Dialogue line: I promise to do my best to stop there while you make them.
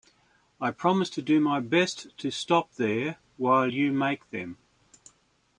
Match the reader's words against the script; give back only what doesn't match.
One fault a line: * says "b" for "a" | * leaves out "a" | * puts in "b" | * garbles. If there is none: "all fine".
all fine